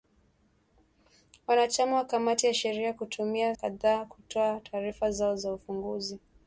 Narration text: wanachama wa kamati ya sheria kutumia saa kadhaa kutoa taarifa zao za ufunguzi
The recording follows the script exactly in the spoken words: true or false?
false